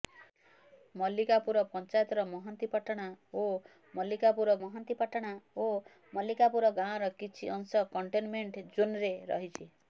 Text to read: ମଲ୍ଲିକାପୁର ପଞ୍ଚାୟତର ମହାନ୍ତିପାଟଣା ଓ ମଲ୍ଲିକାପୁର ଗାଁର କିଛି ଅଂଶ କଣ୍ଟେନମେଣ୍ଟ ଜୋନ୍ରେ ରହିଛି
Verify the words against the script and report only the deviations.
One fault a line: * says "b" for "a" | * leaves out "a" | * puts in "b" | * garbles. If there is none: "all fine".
* puts in "ମହାନ୍ତିପାଟଣା ଓ ମଲ୍ଲିକାପୁର"